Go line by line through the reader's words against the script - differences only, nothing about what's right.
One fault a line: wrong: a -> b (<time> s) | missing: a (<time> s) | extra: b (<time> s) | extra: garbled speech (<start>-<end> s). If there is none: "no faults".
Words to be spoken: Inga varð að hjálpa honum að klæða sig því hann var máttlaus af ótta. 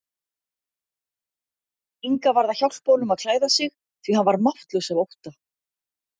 no faults